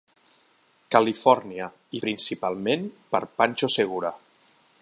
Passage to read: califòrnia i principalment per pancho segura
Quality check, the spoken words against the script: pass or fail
pass